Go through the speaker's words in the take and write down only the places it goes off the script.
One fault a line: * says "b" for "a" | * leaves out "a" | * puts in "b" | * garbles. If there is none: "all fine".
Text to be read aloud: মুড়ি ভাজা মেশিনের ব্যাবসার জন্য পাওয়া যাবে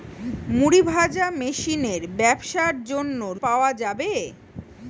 all fine